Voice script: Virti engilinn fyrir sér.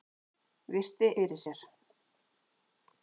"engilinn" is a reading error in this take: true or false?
true